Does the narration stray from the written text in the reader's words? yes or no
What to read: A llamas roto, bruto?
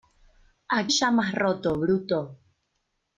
no